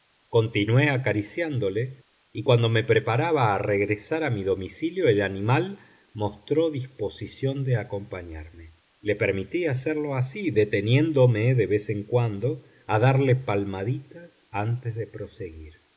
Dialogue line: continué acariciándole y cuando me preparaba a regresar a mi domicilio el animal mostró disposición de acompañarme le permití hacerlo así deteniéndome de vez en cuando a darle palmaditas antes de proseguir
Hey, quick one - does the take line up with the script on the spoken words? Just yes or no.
yes